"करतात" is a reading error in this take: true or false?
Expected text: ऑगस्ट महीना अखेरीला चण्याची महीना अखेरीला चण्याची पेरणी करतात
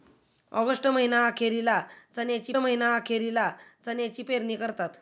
false